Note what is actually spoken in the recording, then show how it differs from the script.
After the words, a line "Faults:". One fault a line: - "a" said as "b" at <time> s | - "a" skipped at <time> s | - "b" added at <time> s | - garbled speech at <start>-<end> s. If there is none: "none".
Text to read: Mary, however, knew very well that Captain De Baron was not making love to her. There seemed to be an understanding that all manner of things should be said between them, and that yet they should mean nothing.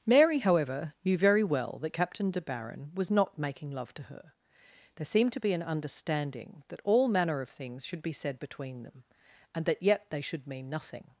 Mary, however, knew very well that Captain De Baron was not making love to her. There seemed to be an understanding that all manner of things should be said between them, and that yet they should mean nothing.
Faults:
none